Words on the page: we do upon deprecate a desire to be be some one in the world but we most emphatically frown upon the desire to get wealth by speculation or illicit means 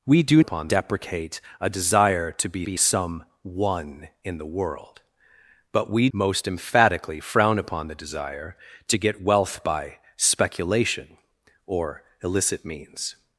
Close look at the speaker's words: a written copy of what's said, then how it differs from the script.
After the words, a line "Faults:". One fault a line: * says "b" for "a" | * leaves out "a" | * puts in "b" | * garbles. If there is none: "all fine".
we do upon deprecate a desire to be be some one in the world but we most emphatically frown upon the desire to get wealth by speculation or illicit means
Faults:
all fine